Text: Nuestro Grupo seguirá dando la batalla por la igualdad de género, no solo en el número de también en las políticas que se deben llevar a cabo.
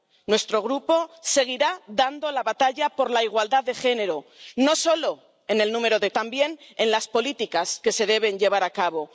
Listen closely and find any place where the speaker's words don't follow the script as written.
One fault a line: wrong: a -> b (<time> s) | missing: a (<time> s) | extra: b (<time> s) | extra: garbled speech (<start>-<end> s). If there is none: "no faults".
no faults